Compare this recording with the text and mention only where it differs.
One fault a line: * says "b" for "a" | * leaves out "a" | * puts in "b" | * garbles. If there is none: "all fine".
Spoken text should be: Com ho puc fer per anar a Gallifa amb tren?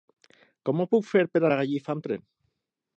* leaves out "anar"